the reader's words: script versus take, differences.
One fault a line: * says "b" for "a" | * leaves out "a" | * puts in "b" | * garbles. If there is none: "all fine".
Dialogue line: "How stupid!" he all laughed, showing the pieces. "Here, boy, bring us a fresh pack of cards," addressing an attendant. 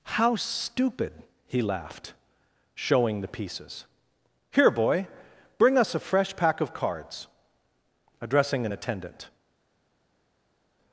* leaves out "all"